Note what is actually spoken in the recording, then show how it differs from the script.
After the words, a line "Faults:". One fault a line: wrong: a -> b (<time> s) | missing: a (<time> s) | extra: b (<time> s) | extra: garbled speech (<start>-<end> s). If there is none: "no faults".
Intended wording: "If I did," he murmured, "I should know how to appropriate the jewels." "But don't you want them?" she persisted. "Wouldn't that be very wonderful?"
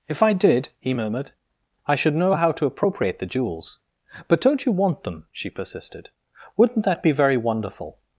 "If I did," he murmured, "I should know how to appropriate the jewels." "But don't you want them?" she persisted. "Wouldn't that be very wonderful?"
Faults:
no faults